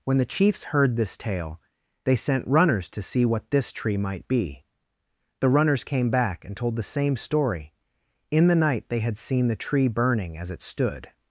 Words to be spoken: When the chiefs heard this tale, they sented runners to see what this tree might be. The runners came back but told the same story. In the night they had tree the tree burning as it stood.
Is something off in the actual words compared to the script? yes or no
yes